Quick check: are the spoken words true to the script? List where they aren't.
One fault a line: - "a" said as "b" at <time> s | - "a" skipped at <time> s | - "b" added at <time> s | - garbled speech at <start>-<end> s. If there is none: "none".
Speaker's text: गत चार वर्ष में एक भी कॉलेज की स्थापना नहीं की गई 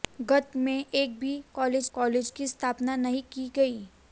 - "चार वर्ष" skipped at 0.5 s
- "कॉलेज" added at 1.9 s